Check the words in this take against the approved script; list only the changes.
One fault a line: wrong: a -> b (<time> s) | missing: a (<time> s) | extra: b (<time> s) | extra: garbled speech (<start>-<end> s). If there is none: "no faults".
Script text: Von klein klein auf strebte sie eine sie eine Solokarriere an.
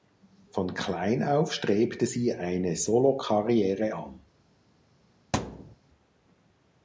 missing: klein (1.2 s)
missing: sie eine (2.8 s)